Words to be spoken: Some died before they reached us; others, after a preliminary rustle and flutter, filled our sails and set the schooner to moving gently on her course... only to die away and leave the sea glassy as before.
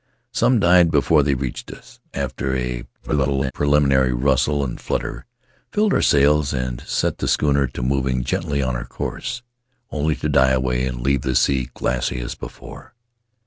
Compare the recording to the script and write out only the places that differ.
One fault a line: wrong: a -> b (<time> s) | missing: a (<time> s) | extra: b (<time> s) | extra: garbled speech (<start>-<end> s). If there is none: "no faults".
missing: others (2.0 s)
extra: garbled speech (3.0-3.5 s)